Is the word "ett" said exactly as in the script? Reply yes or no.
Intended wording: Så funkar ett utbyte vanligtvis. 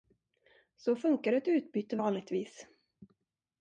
yes